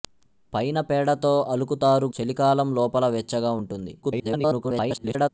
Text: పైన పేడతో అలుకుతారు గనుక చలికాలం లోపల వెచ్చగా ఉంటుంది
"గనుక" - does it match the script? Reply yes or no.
no